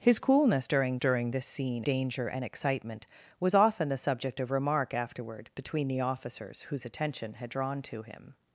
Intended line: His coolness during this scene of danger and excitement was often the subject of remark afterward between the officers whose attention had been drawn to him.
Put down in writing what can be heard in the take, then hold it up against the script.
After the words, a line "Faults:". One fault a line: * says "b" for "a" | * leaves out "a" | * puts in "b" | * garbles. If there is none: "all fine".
His coolness during during this scene danger and excitement was often the subject of remark afterward between the officers whose attention had drawn to him.
Faults:
* puts in "during"
* leaves out "of"
* leaves out "been"